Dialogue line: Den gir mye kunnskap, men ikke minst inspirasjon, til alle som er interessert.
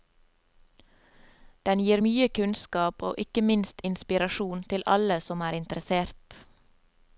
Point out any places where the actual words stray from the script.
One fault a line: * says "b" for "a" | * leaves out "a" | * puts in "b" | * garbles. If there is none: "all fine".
* says "og" for "men"